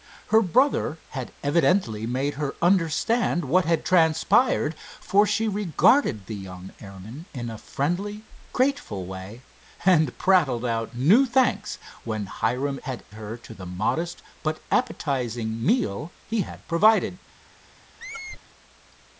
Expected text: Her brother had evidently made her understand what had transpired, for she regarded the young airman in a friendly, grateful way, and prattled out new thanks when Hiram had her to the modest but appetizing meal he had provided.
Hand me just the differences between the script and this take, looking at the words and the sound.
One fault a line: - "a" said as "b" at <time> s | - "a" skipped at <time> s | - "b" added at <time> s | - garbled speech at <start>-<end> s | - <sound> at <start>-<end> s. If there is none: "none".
- squeak at 18.0-18.4 s